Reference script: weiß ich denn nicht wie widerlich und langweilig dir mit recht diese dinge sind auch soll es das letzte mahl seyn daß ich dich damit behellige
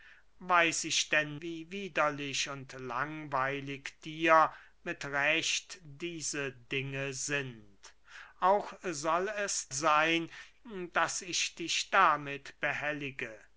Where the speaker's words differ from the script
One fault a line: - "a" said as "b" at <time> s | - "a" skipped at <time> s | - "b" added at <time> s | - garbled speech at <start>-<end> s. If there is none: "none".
- "nicht" skipped at 1.4 s
- "das letzte mahl" skipped at 9.7 s